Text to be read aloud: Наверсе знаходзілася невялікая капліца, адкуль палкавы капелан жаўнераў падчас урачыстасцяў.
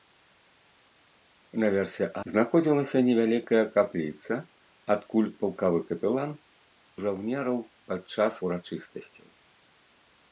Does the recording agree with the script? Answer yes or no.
yes